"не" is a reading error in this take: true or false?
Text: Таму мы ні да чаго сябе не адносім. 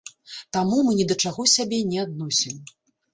false